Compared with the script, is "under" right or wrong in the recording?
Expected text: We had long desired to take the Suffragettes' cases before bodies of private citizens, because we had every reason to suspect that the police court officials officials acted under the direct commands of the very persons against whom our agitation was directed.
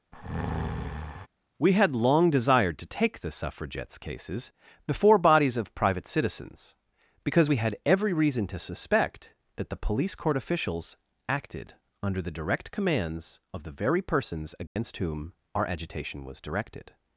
right